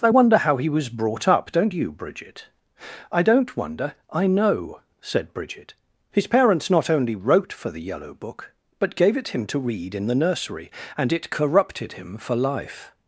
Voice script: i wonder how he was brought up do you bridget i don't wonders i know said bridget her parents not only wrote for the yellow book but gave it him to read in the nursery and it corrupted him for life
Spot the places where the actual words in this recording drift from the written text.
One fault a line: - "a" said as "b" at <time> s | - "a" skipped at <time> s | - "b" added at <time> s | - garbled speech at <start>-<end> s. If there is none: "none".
- "do" said as "don't" at 1.5 s
- "wonders" said as "wonder" at 3.6 s
- "her" said as "his" at 6.1 s